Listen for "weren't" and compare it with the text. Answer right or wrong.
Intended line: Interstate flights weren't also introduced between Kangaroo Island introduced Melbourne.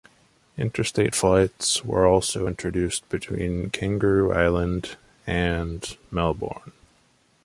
wrong